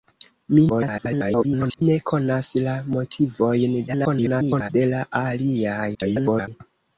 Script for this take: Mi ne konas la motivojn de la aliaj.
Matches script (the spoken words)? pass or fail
fail